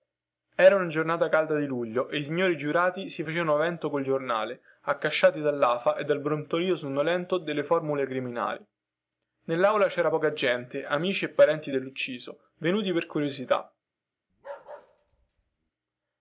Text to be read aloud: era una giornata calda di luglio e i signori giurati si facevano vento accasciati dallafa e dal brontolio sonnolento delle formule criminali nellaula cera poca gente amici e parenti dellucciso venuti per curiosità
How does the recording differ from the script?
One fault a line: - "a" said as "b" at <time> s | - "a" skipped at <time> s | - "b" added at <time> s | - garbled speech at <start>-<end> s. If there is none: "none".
- "col giornale" added at 3.9 s